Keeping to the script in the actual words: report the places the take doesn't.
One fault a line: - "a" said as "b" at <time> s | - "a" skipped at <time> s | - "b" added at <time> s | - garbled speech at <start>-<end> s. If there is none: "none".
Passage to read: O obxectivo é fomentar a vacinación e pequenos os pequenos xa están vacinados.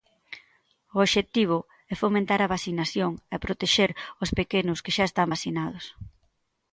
- "pequenos" said as "protexer" at 3.4 s
- "que" added at 4.8 s